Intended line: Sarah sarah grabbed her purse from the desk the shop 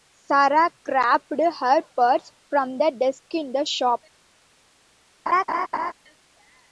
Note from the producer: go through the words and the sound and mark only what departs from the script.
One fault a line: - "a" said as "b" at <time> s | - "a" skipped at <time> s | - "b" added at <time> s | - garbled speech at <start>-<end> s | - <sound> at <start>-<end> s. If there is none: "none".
- "sarah" skipped at 0.7 s
- "in" added at 3.3 s
- laugh at 5.3-5.9 s